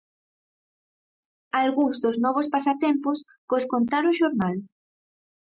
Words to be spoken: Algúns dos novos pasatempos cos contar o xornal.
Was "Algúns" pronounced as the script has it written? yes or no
yes